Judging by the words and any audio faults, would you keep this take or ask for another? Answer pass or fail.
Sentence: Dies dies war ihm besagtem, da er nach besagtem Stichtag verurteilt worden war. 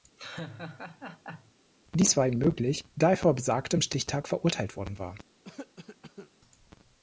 fail